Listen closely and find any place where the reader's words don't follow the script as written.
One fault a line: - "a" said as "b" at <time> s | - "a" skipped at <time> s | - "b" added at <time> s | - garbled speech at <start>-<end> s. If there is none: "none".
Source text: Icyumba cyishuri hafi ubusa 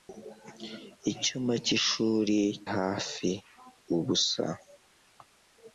none